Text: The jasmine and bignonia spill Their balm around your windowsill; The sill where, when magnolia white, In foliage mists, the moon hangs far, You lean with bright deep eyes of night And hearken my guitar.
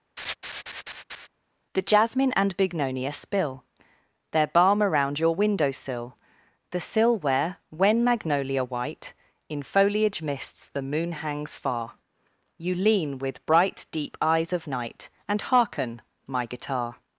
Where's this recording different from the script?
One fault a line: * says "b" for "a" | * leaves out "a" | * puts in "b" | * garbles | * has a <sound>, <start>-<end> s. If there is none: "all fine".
* has a laugh, 0.2-1.3 s